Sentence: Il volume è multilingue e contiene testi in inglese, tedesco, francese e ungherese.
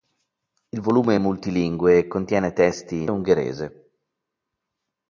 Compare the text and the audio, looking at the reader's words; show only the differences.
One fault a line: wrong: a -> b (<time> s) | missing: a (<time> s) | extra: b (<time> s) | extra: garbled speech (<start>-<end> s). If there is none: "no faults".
missing: inglese tedesco francese (3.1 s)